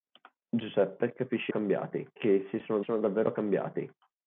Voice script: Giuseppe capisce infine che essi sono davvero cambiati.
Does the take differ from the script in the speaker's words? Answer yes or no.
yes